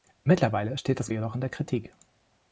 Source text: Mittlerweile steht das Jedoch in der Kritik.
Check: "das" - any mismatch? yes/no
no